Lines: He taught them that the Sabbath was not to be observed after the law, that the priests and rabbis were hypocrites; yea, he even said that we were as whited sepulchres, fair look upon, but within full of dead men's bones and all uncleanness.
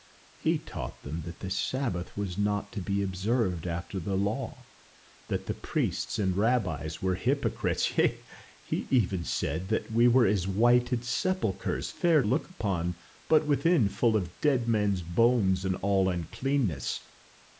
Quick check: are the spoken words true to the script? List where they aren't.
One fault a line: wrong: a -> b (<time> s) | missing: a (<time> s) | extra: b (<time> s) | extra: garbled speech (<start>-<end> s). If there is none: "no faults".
no faults